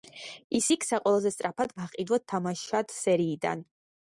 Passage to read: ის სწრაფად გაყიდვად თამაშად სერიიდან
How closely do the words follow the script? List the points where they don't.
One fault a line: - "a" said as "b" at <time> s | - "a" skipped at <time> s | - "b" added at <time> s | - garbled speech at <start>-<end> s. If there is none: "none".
- "იქცა ყველაზე" added at 0.7 s